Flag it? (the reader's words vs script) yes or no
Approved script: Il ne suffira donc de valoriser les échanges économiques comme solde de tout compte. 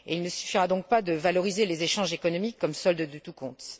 yes